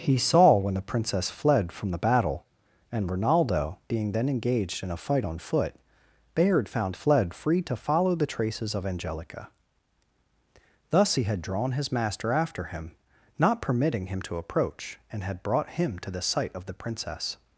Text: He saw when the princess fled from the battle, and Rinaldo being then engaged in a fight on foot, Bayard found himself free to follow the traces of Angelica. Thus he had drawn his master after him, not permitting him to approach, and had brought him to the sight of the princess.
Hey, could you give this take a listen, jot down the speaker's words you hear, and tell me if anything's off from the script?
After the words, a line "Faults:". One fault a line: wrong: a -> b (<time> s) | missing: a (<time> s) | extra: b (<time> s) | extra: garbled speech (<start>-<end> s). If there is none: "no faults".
He saw when the princess fled from the battle, and Rinaldo being then engaged in a fight on foot, Bayard found fled free to follow the traces of Angelica. Thus he had drawn his master after him, not permitting him to approach, and had brought him to the sight of the princess.
Faults:
wrong: himself -> fled (6.9 s)